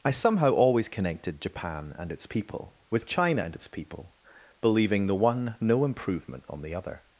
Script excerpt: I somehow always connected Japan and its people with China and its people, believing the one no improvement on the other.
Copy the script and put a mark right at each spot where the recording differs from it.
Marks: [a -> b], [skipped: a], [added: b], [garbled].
I somehow always connected Japan and its people with China and its people, believing the one no improvement on the other.